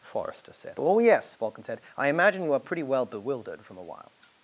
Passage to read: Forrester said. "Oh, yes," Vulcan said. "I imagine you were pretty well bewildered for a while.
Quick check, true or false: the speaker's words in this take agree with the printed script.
false